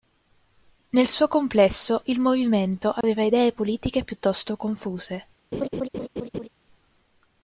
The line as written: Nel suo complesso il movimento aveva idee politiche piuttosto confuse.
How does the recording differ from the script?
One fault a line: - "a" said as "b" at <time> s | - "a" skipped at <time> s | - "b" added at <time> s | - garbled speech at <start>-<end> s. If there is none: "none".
none